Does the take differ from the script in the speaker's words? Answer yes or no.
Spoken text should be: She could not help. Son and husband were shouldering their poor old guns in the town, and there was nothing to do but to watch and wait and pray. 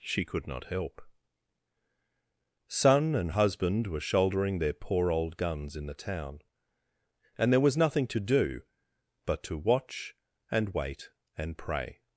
no